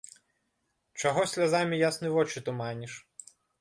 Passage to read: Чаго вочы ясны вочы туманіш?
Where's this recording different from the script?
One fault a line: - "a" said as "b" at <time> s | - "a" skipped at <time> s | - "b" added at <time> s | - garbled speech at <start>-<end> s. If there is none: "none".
- "вочы" said as "слязамі" at 1.4 s